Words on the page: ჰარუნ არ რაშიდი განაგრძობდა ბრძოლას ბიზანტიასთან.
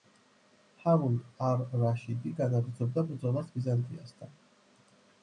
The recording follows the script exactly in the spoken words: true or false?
true